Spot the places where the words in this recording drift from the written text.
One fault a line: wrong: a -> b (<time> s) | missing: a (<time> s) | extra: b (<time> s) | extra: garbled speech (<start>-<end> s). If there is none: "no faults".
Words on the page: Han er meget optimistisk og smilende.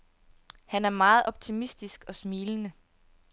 no faults